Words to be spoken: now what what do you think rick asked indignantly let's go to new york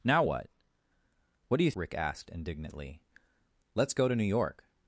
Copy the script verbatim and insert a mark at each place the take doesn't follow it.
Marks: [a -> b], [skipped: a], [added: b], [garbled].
now what what do you [skipped: think] rick asked indignantly let's go to new york